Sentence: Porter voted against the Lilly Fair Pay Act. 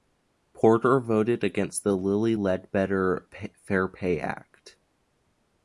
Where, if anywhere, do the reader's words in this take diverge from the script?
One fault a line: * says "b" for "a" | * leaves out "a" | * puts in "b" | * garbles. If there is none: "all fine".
* puts in "Ledbetter"